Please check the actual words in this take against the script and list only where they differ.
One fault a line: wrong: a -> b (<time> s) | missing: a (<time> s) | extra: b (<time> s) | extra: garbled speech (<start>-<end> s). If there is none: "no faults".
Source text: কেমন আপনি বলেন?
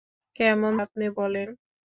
no faults